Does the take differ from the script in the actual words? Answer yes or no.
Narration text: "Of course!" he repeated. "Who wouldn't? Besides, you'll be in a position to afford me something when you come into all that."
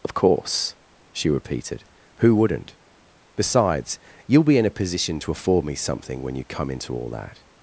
yes